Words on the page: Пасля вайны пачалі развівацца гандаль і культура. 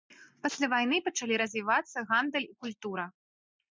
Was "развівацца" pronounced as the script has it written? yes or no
yes